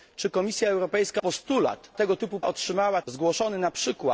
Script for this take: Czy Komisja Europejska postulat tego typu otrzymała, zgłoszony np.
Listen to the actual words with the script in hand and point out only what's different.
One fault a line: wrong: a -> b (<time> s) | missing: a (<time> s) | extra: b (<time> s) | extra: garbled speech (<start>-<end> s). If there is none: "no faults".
no faults